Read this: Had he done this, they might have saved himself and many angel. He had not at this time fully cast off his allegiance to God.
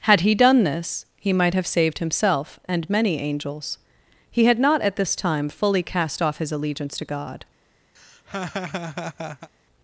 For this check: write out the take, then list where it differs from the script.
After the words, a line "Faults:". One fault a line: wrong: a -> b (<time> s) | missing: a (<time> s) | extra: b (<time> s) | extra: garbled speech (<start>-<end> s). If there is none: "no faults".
Had he done this, he might have saved himself and many angels. He had not at this time fully cast off his allegiance to God.
Faults:
wrong: they -> he (1.2 s)
wrong: angel -> angels (3.2 s)